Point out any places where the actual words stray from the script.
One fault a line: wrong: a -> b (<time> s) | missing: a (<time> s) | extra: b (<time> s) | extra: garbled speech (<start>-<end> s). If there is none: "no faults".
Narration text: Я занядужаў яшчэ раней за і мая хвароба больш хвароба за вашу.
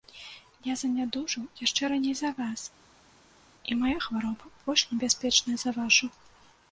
extra: вас (2.4 s)
wrong: хвароба -> небяспечная (4.9 s)